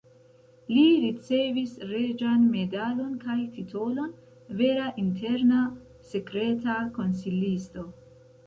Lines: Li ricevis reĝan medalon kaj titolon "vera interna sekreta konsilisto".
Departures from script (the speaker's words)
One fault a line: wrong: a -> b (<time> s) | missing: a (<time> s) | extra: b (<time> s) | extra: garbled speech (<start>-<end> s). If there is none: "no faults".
no faults